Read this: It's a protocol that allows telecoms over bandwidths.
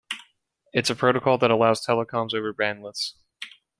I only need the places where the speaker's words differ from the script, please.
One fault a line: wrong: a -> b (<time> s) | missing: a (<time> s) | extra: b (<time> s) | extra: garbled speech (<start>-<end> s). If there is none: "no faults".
no faults